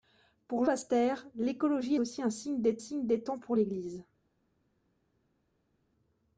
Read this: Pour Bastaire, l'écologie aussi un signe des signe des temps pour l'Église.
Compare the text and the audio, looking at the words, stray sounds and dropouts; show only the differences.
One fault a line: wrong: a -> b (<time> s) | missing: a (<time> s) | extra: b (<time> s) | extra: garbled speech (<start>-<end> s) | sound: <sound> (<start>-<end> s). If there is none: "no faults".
no faults